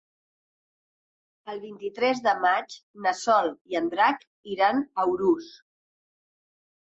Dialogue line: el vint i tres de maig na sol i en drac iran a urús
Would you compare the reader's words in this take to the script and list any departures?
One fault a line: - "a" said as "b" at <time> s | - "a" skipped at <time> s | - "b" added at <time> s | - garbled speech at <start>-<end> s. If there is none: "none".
none